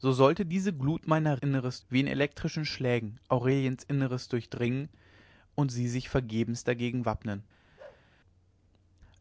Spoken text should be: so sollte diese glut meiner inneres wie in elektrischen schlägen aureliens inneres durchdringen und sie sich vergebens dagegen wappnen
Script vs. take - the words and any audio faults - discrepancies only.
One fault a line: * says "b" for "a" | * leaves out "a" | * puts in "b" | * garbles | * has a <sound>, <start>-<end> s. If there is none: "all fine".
* has a bark, 7.8-8.1 s